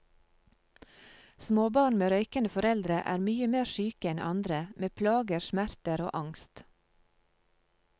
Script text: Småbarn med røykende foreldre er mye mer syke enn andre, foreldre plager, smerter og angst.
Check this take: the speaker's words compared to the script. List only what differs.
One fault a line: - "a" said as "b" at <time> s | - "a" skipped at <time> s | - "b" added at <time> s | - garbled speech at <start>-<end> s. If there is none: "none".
- "foreldre" said as "med" at 4.8 s